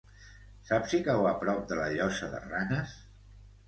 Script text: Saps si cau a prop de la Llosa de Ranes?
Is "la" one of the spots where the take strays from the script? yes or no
no